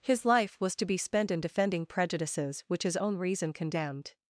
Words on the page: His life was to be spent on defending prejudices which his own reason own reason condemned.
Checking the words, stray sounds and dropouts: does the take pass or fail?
fail